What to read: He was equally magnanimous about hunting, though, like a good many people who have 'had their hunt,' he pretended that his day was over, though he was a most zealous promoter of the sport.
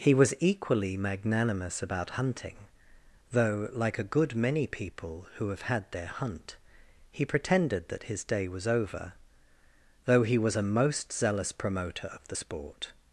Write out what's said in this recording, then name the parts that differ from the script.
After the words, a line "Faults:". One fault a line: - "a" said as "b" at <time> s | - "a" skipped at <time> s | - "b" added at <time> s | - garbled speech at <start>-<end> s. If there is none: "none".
He was equally magnanimous about hunting, though, like a good many people who have 'had their hunt,' he pretended that his day was over, though he was a most zealous promoter of the sport.
Faults:
none